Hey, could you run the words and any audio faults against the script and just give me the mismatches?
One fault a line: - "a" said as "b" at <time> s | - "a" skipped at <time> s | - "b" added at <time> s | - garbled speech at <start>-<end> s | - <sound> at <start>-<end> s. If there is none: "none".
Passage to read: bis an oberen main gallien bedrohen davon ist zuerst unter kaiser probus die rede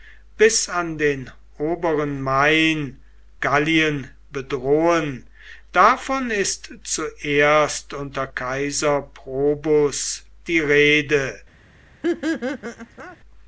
- "den" added at 1.0 s
- laugh at 12.0-13.2 s